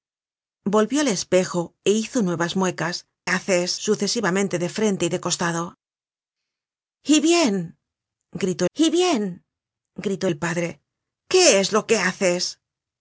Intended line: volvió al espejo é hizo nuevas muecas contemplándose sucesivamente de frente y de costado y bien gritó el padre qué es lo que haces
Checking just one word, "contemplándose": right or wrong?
wrong